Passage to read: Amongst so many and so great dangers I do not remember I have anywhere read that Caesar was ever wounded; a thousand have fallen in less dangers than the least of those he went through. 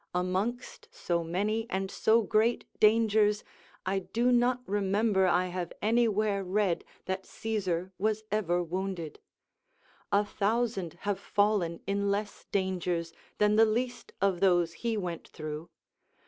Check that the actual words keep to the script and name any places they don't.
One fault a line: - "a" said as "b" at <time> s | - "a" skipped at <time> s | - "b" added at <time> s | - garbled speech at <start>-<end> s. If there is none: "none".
none